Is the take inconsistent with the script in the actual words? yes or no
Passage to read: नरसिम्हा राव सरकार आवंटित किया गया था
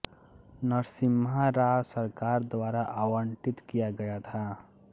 yes